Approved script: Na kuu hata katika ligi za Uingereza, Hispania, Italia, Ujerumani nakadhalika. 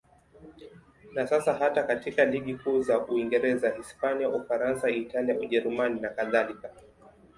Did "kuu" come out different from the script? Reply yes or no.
yes